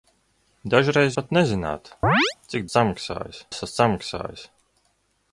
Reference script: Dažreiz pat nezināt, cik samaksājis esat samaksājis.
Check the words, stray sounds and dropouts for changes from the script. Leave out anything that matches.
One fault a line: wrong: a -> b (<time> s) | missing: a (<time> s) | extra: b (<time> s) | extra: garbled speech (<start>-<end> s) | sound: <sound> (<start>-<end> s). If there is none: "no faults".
sound: chirp (2.0-2.4 s)